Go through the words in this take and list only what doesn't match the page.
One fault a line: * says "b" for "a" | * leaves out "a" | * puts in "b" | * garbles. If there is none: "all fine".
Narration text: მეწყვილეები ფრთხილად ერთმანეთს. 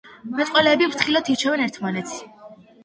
* puts in "ირჩევენ"